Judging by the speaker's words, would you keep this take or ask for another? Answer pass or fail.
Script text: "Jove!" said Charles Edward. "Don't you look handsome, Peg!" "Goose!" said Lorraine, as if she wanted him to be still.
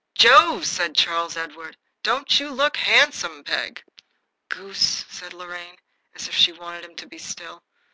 pass